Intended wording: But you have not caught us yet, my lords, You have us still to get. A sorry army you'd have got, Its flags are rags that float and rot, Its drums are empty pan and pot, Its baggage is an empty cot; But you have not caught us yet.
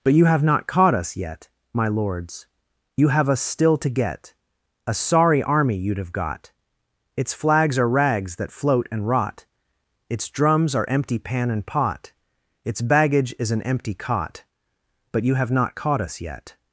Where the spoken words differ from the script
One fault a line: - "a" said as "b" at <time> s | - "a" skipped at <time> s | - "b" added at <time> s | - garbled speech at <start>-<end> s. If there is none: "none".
none